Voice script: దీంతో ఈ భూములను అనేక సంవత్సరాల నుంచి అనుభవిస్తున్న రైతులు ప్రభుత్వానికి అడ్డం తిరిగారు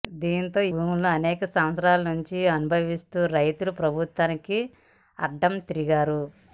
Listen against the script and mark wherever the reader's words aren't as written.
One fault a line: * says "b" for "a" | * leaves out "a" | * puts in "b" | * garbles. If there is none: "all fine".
* leaves out "ఈ"